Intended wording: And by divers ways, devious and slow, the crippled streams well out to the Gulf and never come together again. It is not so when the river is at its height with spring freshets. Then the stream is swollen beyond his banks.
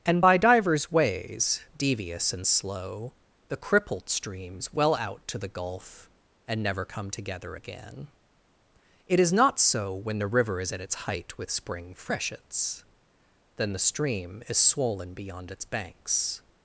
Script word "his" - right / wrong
wrong